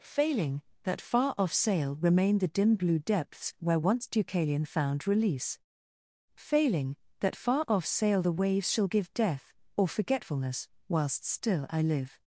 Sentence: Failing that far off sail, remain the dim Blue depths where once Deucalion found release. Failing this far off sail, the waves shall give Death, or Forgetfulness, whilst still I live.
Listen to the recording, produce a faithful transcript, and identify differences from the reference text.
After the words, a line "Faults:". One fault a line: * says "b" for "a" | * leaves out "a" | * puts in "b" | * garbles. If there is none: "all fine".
Failing that far off sail, remain the dim Blue depths where once Deucalion found release. Failing that far off sail, the waves shall give Death, or Forgetfulness, whilst still I live.
Faults:
* says "that" for "this"